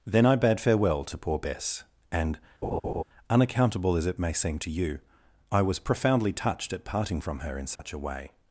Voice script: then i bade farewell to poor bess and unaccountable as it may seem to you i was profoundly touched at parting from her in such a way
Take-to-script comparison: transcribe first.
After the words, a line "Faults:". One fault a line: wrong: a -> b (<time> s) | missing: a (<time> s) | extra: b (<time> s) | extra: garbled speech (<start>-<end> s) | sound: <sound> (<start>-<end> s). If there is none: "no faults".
then i bade farewell to poor bess and unaccountable as it may seem to you i was profoundly touched at parting from her in such a way
Faults:
sound: laugh (2.6-3.0 s)
sound: dropout (7.8-7.8 s)